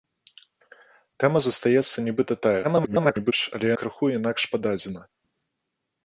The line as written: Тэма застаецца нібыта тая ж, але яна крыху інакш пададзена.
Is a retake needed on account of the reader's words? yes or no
yes